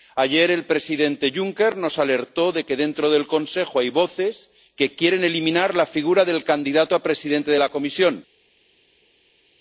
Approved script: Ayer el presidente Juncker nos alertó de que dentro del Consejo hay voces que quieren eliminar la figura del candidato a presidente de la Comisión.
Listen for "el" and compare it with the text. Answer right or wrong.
right